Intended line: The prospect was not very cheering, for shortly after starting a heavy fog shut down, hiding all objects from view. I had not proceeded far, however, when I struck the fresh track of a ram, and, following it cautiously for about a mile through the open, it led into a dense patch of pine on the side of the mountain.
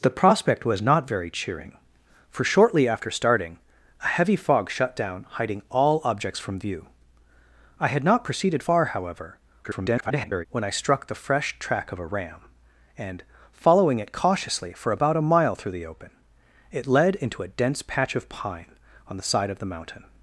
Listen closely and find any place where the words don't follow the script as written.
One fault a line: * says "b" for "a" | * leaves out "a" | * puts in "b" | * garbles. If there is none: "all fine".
* garbles